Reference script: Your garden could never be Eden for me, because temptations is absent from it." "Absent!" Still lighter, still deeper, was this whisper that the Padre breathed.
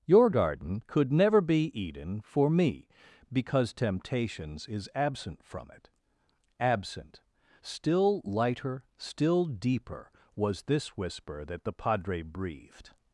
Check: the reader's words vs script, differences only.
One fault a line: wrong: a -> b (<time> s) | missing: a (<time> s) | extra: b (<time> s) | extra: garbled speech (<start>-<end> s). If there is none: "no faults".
no faults